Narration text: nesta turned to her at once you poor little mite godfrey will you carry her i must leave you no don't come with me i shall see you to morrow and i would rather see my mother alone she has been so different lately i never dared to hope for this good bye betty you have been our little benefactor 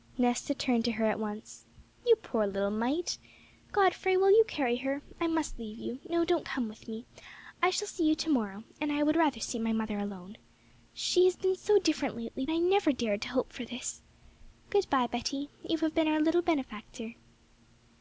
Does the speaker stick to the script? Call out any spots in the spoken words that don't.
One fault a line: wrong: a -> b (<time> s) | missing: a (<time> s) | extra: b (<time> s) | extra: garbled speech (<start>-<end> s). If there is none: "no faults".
no faults